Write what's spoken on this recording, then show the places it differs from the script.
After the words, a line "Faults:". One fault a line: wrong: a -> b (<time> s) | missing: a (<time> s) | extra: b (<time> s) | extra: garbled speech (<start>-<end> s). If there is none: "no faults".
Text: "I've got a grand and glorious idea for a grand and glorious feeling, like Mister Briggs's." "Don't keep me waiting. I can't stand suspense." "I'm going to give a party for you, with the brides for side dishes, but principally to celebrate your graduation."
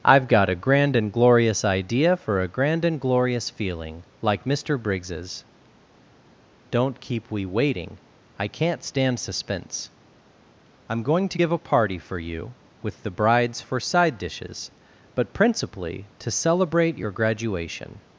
"I've got a grand and glorious idea for a grand and glorious feeling, like Mister Briggs's." "Don't keep we waiting. I can't stand suspense." "I'm going to give a party for you, with the brides for side dishes, but principally to celebrate your graduation."
Faults:
wrong: me -> we (7.3 s)